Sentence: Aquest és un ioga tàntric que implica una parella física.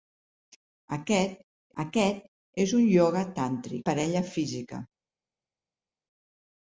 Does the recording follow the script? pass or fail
fail